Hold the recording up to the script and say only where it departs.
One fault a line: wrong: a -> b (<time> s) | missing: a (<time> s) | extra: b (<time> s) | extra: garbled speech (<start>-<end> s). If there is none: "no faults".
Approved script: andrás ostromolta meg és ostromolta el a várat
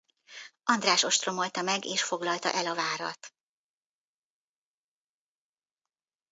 wrong: ostromolta -> foglalta (2.0 s)